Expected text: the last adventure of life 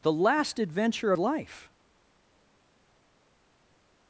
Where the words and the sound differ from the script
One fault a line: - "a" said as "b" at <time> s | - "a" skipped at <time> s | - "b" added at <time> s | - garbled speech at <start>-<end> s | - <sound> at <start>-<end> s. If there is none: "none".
none